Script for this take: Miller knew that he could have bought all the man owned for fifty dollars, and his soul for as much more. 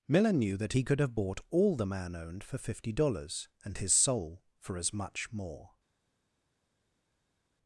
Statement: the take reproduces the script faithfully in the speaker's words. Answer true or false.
true